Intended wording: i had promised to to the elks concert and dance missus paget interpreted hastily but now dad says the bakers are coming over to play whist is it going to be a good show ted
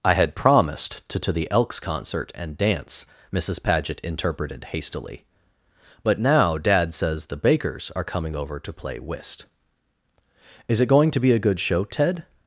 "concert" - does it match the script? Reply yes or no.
yes